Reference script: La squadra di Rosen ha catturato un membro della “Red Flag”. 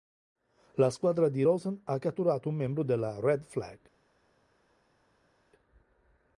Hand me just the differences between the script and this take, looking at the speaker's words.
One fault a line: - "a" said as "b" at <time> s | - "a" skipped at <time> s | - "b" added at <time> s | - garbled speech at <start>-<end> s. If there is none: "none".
none